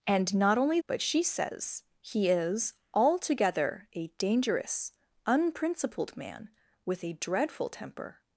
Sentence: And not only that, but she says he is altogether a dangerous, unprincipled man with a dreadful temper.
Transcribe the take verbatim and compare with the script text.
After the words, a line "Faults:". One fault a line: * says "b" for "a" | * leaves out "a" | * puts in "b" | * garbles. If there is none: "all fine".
And not only but she says he is altogether a dangerous, unprincipled man with a dreadful temper.
Faults:
* leaves out "that"